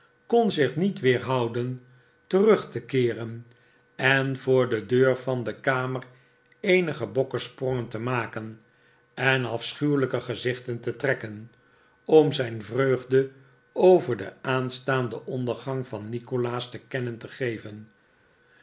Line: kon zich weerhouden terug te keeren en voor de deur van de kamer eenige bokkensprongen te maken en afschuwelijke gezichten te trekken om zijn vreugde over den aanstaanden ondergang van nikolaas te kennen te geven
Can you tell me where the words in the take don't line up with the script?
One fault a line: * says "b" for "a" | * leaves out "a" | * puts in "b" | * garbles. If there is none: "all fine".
* puts in "niet"